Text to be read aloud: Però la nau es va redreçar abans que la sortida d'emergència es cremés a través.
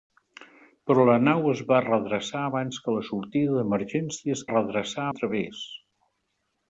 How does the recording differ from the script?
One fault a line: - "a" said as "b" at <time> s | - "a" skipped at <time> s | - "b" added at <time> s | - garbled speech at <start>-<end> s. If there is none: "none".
- "cremés" said as "redreçar" at 4.5 s